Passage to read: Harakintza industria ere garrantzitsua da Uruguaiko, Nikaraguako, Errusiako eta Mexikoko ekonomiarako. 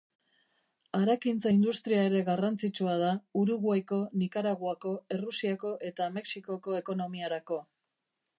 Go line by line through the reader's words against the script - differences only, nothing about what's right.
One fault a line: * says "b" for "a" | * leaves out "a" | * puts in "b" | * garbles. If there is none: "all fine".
all fine